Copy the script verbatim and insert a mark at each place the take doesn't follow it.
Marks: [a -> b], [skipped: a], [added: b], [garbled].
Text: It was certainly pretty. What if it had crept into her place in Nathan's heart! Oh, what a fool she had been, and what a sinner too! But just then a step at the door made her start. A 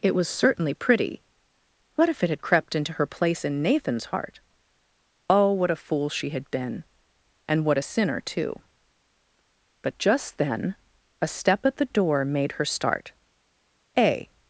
It was certainly pretty. What if it had crept into her place in Nathan's heart! Oh, what a fool she had been, and what a sinner too! But just then a step at the door made her start. A